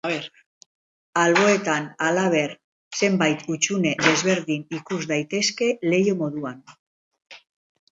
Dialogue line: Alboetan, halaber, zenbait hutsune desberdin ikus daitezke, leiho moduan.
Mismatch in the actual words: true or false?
false